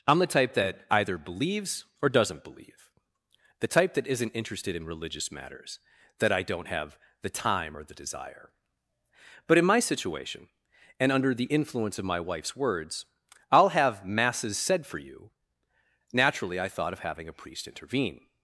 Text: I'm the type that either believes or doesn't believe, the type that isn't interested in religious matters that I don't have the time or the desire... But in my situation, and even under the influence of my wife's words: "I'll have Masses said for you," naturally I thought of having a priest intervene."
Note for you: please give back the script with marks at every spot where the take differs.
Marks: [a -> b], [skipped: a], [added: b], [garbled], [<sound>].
I'm the type that either believes or doesn't believe, the type that isn't interested in religious matters that I don't have the time or the desire... But in my situation, and [skipped: even] under the influence of my wife's words: "I'll have Masses said for you," naturally I thought of having a priest intervene."